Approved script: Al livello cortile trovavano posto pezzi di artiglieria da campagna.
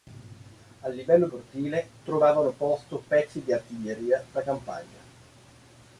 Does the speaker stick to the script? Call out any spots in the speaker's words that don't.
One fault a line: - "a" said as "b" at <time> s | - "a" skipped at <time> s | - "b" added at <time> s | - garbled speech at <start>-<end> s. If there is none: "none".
none